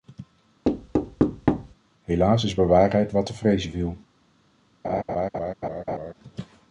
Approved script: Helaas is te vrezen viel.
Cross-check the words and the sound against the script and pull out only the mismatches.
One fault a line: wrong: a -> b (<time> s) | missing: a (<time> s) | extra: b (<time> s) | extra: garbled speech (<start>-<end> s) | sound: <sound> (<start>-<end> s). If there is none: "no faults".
sound: thud (0.6-1.7 s)
extra: bewaarheid wat (2.5 s)
sound: laugh (4.8-6.1 s)